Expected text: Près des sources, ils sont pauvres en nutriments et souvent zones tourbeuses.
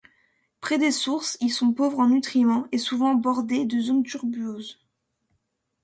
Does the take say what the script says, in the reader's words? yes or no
no